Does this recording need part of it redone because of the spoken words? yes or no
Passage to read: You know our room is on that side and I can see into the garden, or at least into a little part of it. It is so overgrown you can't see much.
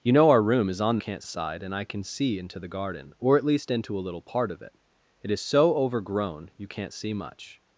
yes